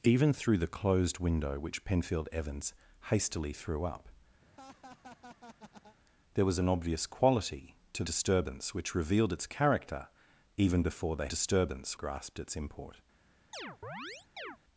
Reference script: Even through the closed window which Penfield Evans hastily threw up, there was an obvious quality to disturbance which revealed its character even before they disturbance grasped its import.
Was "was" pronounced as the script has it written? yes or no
yes